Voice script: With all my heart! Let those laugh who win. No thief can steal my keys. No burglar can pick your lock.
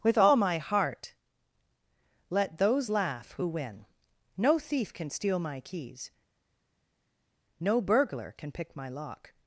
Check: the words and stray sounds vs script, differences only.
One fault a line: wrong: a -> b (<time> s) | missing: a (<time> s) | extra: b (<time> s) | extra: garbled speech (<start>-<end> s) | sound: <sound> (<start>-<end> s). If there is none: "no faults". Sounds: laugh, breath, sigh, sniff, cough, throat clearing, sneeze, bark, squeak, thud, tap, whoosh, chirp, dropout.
wrong: your -> my (8.8 s)